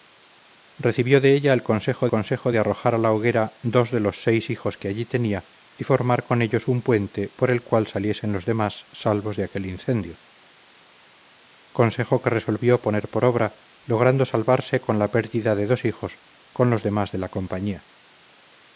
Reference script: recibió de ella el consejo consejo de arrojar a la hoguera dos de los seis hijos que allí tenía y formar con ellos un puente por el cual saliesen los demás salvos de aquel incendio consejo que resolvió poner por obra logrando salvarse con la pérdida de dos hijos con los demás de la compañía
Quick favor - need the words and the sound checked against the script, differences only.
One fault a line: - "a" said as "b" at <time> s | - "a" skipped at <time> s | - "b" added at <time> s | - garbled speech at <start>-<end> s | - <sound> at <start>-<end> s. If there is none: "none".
none